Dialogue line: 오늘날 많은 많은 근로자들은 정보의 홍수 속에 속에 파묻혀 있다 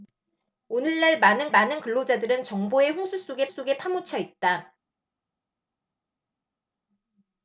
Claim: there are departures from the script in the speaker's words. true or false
false